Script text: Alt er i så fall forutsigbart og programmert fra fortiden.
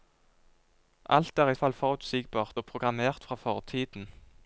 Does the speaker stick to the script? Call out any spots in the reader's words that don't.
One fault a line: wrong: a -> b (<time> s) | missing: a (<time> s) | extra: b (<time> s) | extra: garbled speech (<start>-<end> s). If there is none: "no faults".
missing: så (1.6 s)